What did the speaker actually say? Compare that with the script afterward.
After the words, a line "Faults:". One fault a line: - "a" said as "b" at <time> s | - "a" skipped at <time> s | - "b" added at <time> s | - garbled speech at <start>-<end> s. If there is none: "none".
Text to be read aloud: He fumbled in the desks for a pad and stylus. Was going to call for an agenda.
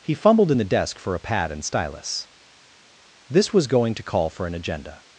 He fumbled in the desk for a pad and stylus. This was going to call for an agenda.
Faults:
- "desks" said as "desk" at 0.6 s
- "This" added at 3.3 s